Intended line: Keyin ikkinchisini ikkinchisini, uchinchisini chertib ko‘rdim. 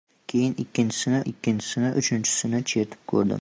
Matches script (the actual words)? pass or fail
pass